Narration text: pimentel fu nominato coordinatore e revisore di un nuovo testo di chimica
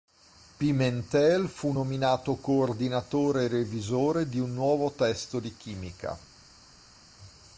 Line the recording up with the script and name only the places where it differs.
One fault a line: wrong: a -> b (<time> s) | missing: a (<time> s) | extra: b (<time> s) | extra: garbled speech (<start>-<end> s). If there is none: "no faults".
no faults